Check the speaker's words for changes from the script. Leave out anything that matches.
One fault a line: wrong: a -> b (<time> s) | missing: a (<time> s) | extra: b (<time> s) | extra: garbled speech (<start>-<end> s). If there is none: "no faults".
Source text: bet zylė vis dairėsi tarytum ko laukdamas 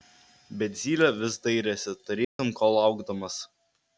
no faults